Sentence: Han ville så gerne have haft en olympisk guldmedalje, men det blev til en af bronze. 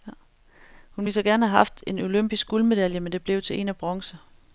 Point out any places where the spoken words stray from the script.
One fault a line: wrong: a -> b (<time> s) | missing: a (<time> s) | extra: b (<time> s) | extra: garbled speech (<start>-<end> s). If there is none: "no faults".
wrong: Han -> Hun (0.9 s)